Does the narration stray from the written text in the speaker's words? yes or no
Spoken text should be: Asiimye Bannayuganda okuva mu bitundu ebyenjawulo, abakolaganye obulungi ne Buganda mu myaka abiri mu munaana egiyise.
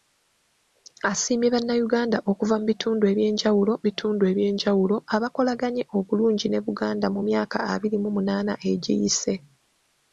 yes